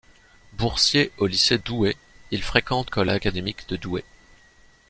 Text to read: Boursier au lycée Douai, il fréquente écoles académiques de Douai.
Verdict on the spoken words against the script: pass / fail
pass